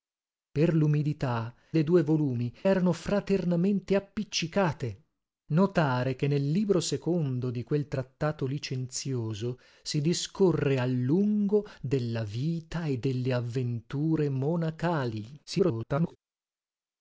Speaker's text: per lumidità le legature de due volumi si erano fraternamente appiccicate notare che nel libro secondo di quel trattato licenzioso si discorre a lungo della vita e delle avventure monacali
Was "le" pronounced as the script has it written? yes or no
no